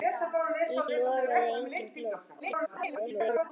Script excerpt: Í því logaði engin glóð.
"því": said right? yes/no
no